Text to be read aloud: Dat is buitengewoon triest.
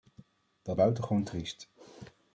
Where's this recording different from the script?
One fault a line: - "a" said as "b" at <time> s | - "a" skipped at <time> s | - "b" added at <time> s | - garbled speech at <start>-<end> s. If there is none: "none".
- "is" skipped at 0.8 s